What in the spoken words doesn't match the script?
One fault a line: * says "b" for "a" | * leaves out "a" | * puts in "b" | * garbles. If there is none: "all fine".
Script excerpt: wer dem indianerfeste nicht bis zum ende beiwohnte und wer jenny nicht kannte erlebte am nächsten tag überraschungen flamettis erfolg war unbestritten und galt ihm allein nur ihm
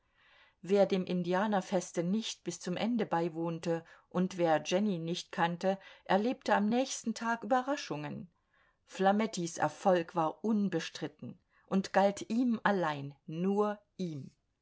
all fine